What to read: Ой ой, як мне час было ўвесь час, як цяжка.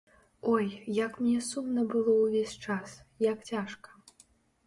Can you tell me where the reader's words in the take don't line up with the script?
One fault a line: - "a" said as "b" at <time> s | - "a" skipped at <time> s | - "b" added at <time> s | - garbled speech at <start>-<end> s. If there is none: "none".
- "ой" skipped at 0.7 s
- "час" said as "сумна" at 1.5 s